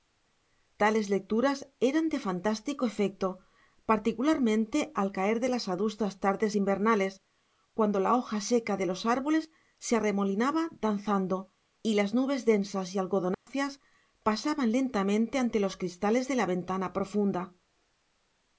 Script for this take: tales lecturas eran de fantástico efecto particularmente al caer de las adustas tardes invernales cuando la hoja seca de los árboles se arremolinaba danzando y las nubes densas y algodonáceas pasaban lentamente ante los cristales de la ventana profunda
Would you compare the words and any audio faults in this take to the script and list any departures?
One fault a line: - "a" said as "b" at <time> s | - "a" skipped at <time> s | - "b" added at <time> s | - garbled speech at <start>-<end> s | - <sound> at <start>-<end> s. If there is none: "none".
- dropout at 13.3-13.5 s